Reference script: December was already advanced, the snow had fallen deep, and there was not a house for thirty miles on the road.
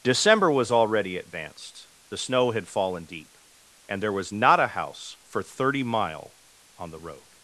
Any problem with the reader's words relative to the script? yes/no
yes